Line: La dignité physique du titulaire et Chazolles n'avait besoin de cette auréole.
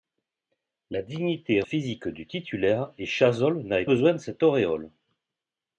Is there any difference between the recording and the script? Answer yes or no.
no